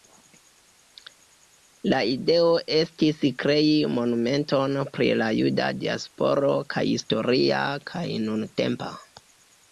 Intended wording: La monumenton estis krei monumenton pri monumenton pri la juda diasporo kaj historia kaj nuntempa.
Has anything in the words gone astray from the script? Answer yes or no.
yes